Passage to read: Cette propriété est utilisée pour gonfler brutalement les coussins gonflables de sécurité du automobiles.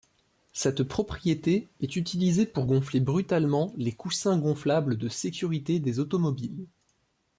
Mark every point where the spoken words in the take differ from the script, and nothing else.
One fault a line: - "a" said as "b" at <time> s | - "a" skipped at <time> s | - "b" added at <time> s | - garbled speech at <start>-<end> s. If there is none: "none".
- "du" said as "des" at 5.8 s